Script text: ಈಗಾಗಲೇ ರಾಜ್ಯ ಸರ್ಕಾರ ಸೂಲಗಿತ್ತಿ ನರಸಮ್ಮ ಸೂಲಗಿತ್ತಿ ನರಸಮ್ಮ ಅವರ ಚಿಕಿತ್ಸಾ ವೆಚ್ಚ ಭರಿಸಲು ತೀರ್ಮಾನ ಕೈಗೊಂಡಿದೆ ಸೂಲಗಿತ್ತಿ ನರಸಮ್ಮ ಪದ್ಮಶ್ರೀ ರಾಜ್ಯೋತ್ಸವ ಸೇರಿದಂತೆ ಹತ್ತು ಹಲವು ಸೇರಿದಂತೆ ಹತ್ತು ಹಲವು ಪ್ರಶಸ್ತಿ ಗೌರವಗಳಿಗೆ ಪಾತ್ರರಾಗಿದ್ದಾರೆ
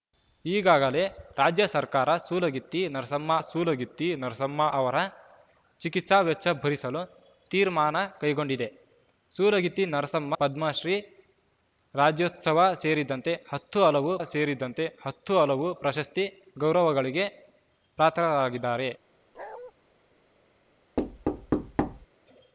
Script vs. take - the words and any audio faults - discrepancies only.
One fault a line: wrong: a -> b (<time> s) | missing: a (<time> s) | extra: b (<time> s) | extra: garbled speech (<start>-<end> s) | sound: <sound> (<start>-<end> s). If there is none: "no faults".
sound: bark (19.3-19.7 s)
sound: thud (21.0-22.1 s)